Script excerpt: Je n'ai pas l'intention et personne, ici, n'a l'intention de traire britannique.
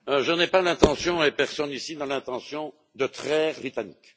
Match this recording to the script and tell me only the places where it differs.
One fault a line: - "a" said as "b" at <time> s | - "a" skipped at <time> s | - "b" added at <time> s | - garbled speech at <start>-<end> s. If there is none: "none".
none